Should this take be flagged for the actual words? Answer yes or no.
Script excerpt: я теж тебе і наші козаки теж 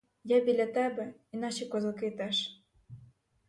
yes